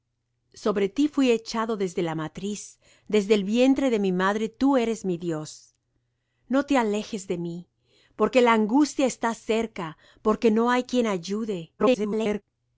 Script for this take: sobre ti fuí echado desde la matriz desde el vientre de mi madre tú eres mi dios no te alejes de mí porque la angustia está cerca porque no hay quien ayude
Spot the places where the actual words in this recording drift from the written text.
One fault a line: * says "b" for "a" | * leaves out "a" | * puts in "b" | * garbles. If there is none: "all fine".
* garbles